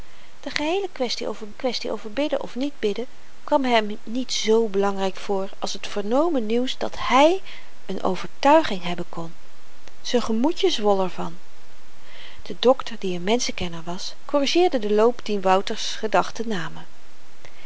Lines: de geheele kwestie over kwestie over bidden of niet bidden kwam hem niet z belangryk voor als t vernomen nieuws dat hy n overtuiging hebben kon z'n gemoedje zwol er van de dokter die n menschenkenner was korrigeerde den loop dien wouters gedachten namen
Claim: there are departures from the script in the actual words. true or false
false